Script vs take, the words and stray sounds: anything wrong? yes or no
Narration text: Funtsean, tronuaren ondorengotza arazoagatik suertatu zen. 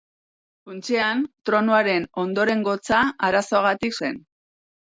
yes